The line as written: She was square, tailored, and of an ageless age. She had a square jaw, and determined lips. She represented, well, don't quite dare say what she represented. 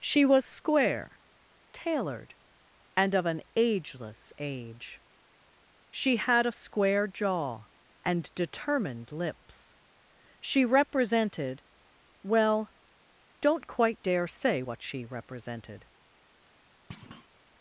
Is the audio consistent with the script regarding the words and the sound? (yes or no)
no